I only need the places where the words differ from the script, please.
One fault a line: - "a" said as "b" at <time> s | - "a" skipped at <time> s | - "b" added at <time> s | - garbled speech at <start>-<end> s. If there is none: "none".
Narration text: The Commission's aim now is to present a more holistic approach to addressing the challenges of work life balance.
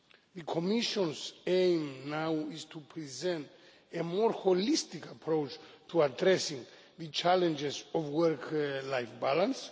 none